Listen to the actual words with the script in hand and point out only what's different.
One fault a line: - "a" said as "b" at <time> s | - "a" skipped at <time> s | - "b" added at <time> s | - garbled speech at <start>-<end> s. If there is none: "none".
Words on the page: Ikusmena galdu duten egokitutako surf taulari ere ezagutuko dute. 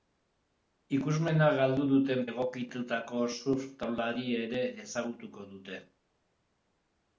none